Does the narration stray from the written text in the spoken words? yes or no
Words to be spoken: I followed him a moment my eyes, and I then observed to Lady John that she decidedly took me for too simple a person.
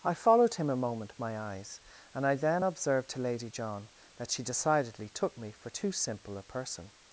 no